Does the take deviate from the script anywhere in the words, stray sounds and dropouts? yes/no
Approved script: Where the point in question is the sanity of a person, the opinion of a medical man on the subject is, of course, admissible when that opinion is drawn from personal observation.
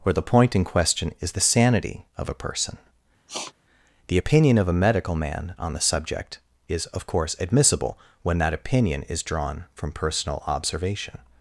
yes